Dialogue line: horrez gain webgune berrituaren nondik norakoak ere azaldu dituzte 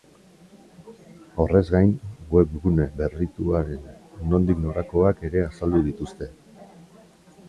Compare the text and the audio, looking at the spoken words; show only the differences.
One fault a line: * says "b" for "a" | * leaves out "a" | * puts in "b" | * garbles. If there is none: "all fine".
all fine